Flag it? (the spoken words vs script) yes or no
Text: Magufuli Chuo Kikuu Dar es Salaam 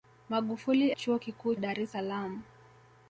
no